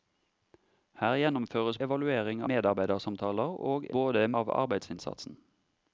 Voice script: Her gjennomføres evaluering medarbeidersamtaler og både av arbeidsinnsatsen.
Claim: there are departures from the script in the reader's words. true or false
false